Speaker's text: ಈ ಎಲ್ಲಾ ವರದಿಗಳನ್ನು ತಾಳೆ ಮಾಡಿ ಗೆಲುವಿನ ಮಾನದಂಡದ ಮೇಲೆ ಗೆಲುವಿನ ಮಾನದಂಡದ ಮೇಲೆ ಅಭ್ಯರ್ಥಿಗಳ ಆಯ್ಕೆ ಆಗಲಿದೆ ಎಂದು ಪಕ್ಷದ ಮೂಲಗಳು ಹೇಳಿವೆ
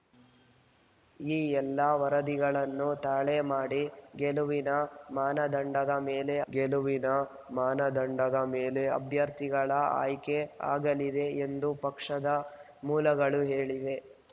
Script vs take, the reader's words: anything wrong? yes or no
no